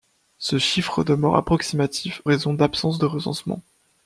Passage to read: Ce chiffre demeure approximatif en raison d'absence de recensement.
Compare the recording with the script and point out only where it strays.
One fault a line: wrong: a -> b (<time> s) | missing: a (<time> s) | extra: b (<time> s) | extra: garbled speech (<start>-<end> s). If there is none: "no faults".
missing: en (2.2 s)